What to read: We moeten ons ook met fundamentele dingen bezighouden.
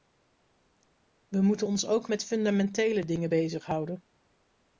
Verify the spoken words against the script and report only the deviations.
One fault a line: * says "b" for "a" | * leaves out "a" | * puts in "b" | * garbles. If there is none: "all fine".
all fine